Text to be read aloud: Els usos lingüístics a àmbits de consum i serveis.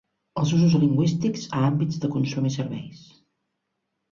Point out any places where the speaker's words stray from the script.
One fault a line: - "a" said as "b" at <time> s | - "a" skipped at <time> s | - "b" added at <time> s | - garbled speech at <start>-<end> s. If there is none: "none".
none